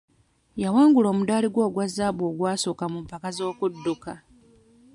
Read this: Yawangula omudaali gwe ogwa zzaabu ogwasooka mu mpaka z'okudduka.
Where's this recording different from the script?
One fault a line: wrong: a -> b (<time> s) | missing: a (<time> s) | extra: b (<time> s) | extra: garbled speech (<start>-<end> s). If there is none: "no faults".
no faults